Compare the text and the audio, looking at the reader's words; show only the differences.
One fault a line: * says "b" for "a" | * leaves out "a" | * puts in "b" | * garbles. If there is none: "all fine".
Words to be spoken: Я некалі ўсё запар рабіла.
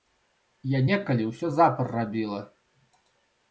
all fine